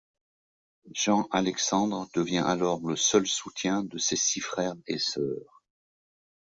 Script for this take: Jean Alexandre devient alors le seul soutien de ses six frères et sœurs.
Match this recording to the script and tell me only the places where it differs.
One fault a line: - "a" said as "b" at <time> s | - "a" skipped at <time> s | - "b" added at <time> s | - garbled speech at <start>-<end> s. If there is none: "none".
none